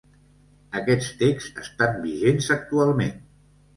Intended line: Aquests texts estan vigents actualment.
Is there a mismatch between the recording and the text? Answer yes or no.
no